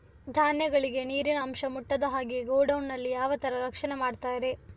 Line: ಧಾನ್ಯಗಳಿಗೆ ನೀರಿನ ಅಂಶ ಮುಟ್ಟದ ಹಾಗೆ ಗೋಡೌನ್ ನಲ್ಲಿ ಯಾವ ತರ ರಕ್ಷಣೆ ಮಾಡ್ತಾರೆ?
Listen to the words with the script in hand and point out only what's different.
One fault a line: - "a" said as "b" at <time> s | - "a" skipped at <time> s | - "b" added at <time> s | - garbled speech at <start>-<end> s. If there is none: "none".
none